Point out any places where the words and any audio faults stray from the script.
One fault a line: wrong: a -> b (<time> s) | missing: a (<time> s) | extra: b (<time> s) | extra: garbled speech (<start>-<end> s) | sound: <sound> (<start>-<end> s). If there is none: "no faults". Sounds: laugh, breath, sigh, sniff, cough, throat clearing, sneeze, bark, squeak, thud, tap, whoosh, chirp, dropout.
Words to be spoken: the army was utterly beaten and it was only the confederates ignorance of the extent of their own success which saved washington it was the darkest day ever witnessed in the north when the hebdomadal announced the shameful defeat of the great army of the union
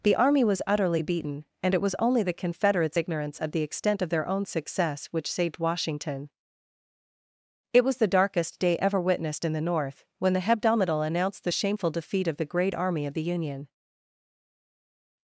no faults